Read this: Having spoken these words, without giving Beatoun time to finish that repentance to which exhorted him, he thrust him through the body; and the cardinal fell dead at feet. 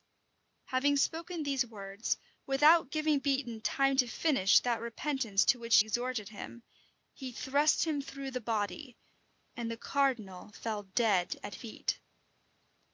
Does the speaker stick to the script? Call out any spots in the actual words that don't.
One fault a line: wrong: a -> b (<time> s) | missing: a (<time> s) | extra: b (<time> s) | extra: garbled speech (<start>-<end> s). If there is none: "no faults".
no faults